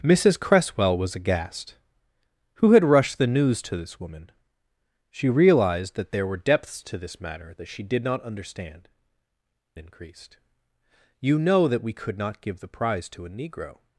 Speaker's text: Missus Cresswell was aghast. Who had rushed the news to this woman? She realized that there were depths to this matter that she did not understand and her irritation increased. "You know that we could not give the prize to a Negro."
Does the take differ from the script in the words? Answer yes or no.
yes